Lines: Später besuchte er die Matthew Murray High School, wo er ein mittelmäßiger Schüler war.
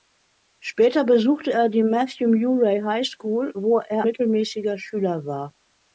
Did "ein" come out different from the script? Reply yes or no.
yes